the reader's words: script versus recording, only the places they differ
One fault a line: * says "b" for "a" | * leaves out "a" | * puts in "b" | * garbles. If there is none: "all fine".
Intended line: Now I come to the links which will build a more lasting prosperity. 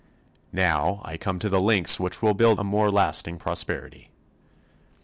all fine